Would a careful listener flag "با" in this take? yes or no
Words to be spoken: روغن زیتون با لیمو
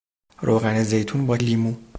no